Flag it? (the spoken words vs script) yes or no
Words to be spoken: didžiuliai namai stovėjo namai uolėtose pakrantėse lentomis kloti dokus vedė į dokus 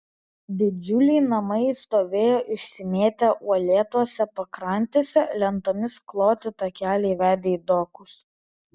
yes